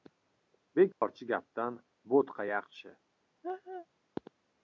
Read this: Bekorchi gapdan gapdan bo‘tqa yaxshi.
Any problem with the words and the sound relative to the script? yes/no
yes